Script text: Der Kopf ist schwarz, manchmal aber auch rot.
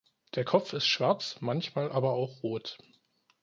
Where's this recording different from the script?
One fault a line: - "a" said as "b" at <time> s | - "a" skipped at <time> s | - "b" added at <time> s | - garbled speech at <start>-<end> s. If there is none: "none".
none